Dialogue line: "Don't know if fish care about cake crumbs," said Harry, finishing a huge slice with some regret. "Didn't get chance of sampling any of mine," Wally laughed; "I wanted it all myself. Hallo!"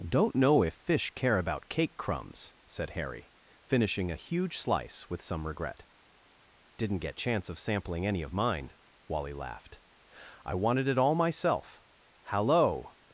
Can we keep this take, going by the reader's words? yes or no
yes